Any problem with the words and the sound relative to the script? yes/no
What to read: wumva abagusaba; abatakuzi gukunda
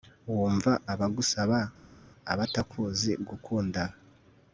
no